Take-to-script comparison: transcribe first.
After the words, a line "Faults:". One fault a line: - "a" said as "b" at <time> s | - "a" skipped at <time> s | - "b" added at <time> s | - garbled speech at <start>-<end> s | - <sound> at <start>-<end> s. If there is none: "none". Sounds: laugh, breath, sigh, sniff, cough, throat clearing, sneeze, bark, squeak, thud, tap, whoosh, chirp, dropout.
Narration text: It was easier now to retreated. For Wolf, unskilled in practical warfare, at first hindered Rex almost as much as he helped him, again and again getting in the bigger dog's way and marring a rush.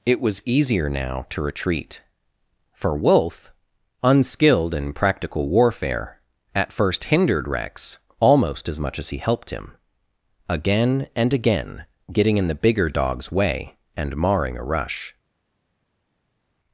It was easier now to retreat. For Wolf, unskilled in practical warfare, at first hindered Rex almost as much as he helped him, again and again getting in the bigger dog's way and marring a rush.
Faults:
- "retreated" said as "retreat" at 1.4 s